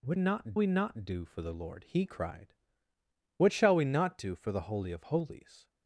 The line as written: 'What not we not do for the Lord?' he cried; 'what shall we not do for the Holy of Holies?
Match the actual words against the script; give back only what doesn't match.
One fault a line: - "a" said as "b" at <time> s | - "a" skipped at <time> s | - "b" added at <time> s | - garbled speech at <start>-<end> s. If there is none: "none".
none